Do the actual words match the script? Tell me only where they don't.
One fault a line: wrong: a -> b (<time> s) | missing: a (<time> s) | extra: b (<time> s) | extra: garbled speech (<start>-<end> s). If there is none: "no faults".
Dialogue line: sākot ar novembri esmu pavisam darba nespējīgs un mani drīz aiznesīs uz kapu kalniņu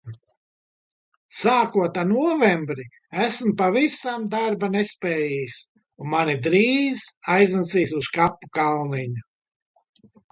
no faults